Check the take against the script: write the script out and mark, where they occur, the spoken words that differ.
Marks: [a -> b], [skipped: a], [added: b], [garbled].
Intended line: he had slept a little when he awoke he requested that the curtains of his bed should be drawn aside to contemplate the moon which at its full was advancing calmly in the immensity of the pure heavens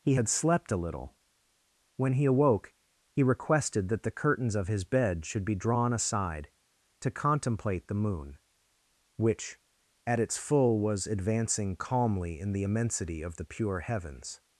he had slept a little when he awoke he requested that the curtains of his bed should be drawn aside to contemplate the moon which at its full was advancing calmly in the immensity of the pure heavens